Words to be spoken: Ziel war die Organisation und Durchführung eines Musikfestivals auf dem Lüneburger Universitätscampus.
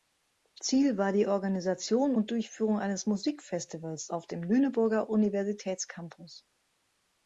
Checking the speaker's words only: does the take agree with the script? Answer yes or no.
yes